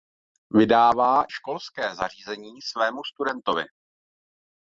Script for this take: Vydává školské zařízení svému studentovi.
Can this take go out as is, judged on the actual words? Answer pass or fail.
pass